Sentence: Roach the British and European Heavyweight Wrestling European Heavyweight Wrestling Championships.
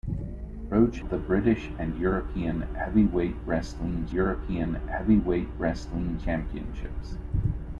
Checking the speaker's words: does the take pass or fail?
pass